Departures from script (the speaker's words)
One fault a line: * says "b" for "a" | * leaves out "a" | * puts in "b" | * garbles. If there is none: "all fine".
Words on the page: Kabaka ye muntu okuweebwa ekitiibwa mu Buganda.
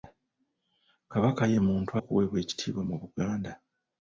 all fine